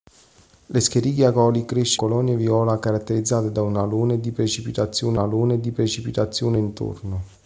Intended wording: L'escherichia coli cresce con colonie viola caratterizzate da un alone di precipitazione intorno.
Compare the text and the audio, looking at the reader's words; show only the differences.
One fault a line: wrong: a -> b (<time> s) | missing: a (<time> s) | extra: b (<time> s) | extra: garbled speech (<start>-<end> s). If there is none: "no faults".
missing: con (2.0 s)
extra: alone di precipitazione (5.2 s)